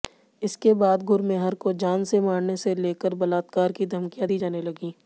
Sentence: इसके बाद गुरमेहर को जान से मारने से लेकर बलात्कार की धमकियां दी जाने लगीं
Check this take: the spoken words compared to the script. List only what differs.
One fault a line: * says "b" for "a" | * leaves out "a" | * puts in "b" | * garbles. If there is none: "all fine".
all fine